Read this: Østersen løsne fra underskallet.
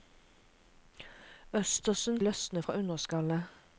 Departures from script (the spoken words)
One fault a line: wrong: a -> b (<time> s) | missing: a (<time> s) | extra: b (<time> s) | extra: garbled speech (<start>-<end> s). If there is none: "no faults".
no faults